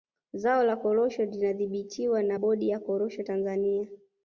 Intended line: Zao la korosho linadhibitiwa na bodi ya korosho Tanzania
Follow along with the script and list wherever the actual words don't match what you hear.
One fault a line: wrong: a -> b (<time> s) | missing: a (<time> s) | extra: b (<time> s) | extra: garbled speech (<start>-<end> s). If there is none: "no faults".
no faults